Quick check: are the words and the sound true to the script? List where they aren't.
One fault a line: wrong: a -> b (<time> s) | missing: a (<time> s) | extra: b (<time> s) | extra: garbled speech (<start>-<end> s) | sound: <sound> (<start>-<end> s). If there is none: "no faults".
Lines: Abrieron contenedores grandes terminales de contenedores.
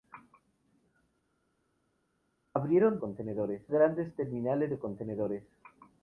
no faults